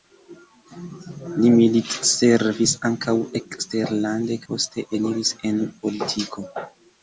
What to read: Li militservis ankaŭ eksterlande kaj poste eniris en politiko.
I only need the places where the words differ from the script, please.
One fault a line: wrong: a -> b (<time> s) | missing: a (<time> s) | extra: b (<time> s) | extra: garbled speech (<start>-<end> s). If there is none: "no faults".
missing: kaj (4.4 s)